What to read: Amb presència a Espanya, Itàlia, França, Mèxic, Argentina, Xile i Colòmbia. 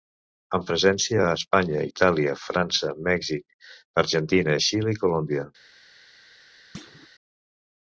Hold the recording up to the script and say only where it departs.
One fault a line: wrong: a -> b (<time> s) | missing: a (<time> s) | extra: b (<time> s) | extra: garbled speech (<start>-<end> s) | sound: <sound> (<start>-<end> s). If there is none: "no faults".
sound: thud (6.7-7.1 s)